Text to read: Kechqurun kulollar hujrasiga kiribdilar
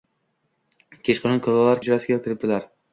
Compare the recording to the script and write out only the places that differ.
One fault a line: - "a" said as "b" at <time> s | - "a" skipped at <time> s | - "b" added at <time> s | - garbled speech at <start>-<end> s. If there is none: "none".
none